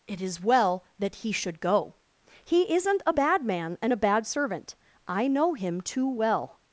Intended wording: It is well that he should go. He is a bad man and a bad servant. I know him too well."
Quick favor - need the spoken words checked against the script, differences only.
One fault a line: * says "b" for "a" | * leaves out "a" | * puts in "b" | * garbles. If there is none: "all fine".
* says "isn't" for "is"